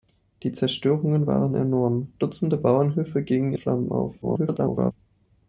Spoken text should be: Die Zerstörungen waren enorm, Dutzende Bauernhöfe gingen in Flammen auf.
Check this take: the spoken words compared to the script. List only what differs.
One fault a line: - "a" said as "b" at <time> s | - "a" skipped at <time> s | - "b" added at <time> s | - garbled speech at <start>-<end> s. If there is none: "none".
- "in" skipped at 3.5 s
- garbled speech at 4.2-4.9 s